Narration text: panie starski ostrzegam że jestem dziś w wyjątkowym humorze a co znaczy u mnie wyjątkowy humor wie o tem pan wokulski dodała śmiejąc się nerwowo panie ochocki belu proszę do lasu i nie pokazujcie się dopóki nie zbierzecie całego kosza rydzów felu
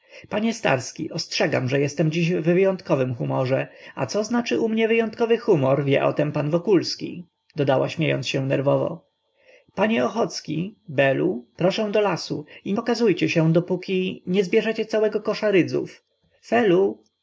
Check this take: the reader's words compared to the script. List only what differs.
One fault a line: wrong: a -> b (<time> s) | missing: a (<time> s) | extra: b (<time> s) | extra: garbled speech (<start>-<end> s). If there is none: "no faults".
missing: nie (12.7 s)